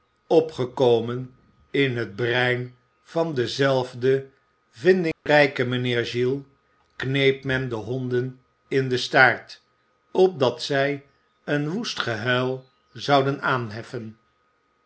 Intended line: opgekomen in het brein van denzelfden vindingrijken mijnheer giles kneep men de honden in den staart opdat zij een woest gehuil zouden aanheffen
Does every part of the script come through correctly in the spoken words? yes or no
yes